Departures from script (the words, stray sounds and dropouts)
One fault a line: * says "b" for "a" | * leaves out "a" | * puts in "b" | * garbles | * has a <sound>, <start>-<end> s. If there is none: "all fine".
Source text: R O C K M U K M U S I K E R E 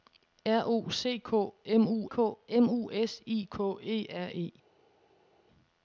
all fine